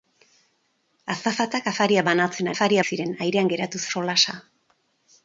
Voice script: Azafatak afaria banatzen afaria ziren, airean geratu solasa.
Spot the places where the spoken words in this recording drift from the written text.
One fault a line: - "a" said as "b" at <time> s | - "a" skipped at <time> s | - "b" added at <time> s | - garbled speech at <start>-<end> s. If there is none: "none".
none